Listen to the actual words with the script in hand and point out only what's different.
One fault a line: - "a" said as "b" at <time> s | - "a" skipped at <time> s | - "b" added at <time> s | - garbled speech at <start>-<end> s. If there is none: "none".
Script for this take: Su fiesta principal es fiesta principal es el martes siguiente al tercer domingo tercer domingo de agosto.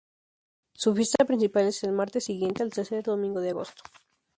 - "fiesta principal es" skipped at 1.8 s
- "tercer domingo" skipped at 3.4 s